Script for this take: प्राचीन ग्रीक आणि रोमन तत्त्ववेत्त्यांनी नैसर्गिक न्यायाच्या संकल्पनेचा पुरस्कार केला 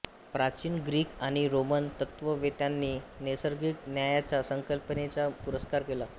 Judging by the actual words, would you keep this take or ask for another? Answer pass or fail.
pass